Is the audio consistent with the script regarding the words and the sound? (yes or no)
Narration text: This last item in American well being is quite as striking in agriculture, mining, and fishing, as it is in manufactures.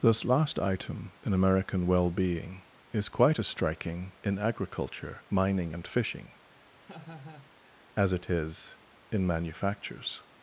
no